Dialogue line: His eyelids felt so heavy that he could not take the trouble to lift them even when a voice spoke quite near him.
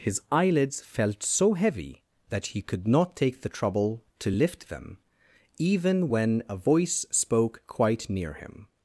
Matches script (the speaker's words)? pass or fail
pass